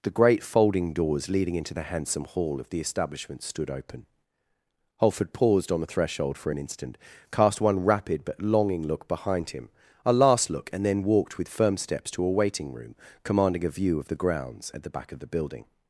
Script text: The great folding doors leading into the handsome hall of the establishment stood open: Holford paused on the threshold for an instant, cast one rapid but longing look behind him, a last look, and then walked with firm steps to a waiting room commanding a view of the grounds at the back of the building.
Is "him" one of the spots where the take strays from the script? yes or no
no